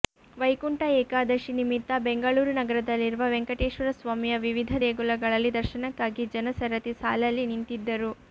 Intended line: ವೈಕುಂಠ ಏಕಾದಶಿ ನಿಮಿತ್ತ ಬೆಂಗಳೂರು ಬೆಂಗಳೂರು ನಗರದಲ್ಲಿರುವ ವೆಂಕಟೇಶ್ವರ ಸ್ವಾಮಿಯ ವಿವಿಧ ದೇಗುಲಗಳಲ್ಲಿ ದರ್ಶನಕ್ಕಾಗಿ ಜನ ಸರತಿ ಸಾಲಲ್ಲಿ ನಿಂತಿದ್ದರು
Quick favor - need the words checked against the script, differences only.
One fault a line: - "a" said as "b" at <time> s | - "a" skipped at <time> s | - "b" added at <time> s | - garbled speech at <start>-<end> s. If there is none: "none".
- "ಬೆಂಗಳೂರು" skipped at 2.5 s